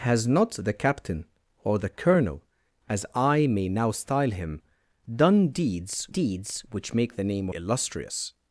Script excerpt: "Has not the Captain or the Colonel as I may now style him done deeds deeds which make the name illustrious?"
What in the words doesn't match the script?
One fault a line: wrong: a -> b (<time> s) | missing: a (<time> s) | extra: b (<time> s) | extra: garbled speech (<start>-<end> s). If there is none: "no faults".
no faults